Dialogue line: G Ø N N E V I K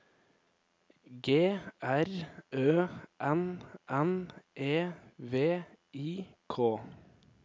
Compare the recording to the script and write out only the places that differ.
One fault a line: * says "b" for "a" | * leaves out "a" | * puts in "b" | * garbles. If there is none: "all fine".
* puts in "R"